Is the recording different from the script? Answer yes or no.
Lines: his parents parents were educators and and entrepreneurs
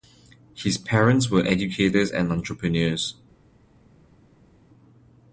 yes